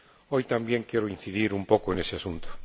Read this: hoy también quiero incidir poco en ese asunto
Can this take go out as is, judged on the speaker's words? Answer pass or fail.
fail